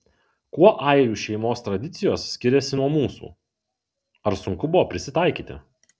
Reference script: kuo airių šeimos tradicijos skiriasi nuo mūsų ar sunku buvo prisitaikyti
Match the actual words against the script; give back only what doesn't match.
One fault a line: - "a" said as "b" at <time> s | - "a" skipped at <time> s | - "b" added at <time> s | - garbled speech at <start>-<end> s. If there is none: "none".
none